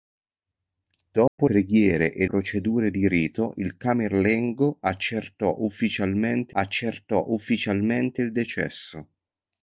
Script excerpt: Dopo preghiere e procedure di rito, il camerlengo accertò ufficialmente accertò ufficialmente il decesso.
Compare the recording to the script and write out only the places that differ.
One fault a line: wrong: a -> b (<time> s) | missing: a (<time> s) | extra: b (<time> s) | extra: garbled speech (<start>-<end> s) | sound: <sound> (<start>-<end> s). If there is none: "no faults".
sound: dropout (1.3-1.4 s)